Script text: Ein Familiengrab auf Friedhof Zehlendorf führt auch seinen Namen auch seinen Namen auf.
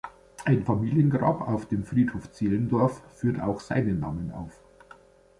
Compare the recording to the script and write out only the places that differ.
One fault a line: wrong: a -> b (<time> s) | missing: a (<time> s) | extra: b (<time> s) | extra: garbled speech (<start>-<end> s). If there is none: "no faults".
extra: dem (1.7 s)
missing: auch seinen Namen (4.3 s)